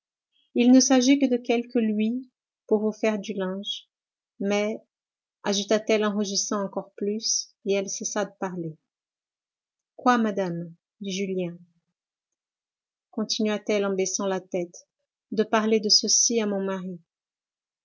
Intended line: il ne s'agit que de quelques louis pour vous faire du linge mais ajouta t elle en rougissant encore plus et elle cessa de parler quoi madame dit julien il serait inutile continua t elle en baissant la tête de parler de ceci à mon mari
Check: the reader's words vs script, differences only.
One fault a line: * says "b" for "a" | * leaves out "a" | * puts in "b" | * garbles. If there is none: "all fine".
* leaves out "il serait inutile"